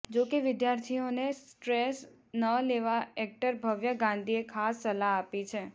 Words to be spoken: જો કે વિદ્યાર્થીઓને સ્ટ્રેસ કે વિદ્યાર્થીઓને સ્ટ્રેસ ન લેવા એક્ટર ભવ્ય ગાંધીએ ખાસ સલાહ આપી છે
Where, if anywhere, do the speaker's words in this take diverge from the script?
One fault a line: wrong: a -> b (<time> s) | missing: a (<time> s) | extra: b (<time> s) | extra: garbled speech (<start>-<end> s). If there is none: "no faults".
missing: કે વિદ્યાર્થીઓને સ્ટ્રેસ (2.0 s)